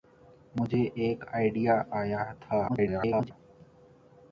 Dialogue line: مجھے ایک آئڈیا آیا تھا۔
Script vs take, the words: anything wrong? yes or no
yes